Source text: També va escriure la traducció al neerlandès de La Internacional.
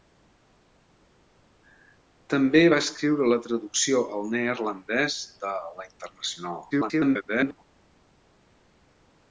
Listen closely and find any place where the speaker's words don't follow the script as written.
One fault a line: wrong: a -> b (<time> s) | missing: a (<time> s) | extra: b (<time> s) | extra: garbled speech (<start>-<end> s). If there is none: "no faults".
extra: garbled speech (6.7-7.6 s)